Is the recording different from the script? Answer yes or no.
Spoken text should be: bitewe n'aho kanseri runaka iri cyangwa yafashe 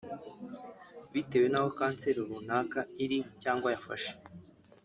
no